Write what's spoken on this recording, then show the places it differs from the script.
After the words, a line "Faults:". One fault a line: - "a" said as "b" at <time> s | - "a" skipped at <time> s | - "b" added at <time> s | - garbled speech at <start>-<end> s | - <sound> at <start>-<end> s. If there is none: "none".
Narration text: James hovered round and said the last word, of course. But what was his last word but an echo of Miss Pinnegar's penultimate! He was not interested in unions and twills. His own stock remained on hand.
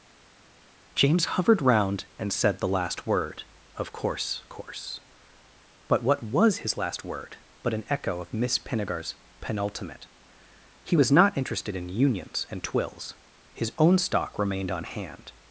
James hovered round and said the last word, of course course. But what was his last word but an echo of Miss Pinnegar's penultimate! He was not interested in unions and twills. His own stock remained on hand.
Faults:
- "course" added at 4.5 s